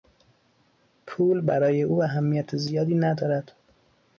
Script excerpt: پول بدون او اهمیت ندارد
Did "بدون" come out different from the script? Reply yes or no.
yes